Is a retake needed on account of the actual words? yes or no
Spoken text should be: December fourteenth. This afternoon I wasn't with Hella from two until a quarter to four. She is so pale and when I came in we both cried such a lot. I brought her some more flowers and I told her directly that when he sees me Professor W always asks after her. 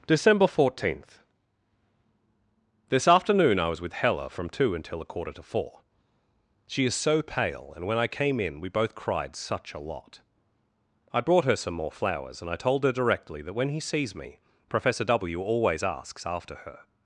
yes